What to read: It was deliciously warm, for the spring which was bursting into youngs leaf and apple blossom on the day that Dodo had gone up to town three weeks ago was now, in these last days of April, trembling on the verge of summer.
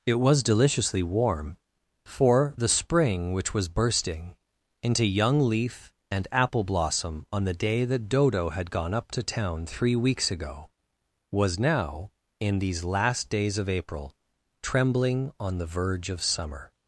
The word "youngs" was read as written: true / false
false